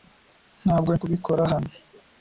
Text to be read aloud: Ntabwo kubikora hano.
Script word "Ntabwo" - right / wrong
right